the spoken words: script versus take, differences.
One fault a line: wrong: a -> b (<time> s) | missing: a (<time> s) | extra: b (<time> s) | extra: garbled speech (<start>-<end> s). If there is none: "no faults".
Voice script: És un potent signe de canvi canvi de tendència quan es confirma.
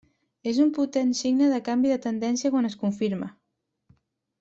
missing: canvi (1.9 s)